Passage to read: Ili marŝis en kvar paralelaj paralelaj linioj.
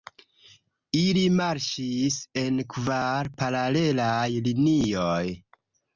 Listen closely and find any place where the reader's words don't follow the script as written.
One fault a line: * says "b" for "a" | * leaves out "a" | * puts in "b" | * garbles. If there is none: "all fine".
* leaves out "paralelaj"